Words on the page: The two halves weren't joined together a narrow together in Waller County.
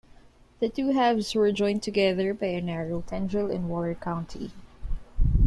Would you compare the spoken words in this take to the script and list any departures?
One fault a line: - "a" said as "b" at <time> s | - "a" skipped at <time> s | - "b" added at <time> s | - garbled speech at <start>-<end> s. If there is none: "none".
- "weren't" said as "were" at 1.4 s
- "by" added at 2.3 s
- "together" said as "tendril" at 3.0 s